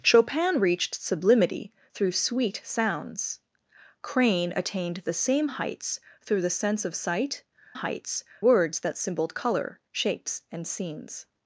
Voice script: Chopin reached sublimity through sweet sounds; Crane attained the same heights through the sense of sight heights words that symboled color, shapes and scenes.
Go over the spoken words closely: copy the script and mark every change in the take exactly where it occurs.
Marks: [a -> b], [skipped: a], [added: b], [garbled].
Chopin reached sublimity through sweet sounds; Crane attained the same heights through the sense of sight heights words that symboled color, shapes and scenes.